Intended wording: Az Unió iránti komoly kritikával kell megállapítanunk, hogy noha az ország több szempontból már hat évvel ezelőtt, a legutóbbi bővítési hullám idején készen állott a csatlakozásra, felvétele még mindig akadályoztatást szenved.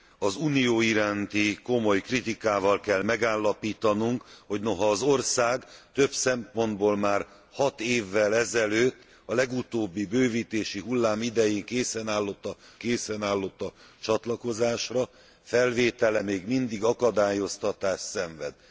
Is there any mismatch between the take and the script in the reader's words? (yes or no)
yes